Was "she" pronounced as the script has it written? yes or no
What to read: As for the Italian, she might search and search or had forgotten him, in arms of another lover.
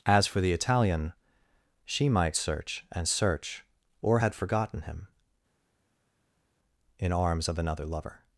yes